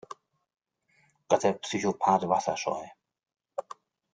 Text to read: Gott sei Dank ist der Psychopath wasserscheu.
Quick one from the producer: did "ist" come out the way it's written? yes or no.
no